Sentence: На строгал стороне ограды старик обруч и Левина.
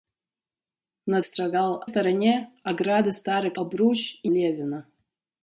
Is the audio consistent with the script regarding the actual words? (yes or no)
yes